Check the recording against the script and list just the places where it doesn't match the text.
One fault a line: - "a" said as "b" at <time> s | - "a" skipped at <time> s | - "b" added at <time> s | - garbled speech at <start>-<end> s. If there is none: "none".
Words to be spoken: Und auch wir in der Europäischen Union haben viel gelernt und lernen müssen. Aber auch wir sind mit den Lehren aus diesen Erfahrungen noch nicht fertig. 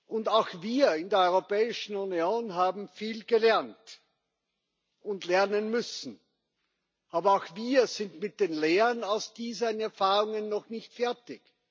none